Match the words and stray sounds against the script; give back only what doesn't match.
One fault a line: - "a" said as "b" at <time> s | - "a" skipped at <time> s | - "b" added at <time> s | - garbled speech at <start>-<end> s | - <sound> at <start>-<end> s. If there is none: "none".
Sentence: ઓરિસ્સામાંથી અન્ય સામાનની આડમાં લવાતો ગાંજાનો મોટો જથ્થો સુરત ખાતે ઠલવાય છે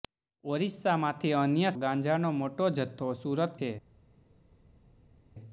- "સામાનની આડમાં લવાતો" skipped at 1.7 s
- "ખાતે ઠલવાય" skipped at 3.6 s